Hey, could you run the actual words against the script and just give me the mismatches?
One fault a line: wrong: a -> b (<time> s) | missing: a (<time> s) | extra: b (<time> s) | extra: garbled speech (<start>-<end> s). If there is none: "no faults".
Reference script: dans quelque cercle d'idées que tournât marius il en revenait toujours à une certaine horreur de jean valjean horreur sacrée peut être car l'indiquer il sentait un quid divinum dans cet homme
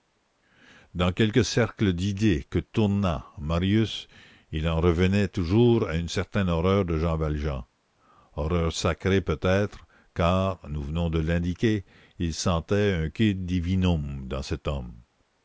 extra: nous venons de (10.7 s)